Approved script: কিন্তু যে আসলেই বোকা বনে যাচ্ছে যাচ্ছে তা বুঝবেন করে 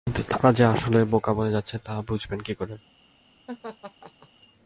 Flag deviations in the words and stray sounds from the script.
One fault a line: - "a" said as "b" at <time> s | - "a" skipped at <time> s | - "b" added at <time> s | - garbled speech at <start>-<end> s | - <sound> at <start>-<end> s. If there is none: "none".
- "তারা" added at 0.3 s
- "যাচ্ছে" skipped at 1.8 s
- "কী" added at 2.4 s
- laugh at 3.5-4.3 s